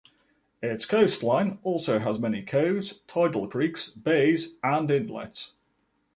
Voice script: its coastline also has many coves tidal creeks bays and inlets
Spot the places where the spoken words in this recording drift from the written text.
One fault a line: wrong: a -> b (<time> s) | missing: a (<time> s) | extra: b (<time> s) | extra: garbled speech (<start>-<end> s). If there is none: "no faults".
no faults